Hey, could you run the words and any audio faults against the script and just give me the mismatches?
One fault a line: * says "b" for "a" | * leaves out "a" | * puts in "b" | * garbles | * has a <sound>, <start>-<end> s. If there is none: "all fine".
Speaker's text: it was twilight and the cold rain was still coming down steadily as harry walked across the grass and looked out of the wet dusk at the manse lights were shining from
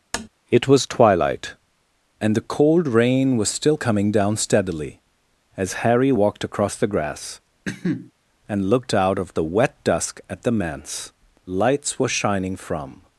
* has a tap, 0.1-0.3 s
* has a cough, 7.7-8.1 s